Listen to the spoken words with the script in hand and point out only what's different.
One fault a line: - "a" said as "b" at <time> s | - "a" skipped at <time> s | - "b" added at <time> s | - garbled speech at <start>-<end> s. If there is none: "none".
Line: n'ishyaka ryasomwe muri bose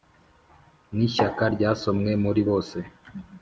none